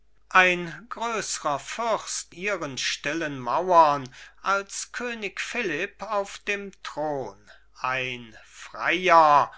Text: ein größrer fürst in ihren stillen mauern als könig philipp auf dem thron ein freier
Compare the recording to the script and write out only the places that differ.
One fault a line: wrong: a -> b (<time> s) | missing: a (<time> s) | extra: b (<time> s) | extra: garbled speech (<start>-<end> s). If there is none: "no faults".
missing: in (2.4 s)